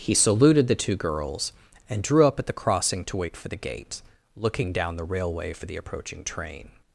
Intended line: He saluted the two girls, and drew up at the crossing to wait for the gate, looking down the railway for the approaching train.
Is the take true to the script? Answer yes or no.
yes